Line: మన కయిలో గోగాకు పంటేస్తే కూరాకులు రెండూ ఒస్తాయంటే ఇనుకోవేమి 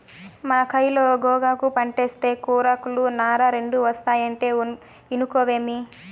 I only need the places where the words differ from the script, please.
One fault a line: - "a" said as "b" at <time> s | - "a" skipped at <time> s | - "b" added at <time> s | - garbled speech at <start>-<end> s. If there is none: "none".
- "నార" added at 3.2 s